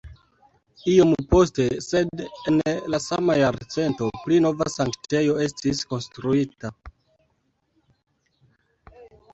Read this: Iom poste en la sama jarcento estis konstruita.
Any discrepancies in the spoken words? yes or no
yes